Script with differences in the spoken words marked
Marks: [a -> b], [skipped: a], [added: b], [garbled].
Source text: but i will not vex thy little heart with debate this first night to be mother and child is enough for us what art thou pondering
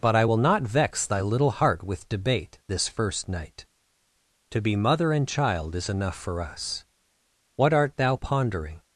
but i will not vex thy little heart with debate this first night to be mother and child is enough for us what art thou pondering